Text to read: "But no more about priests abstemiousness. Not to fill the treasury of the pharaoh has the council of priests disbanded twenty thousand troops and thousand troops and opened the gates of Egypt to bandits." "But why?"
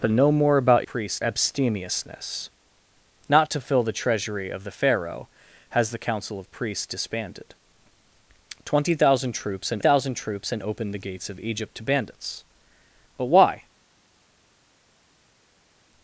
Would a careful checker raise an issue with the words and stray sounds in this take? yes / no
no